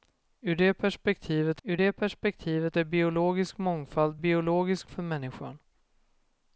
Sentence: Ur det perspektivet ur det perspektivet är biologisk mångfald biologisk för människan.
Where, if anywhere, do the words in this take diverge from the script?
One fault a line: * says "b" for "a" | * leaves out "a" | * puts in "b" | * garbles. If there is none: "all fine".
all fine